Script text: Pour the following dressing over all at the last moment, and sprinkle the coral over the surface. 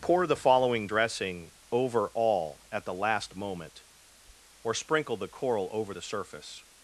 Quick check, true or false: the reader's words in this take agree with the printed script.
false